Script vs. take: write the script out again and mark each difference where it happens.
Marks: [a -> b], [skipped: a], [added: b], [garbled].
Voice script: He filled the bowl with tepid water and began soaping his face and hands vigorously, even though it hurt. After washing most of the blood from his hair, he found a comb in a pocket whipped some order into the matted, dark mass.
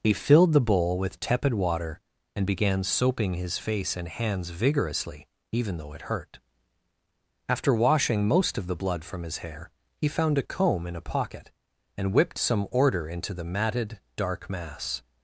He filled the bowl with tepid water and began soaping his face and hands vigorously, even though it hurt. After washing most of the blood from his hair, he found a comb in a pocket [added: and] whipped some order into the matted, dark mass.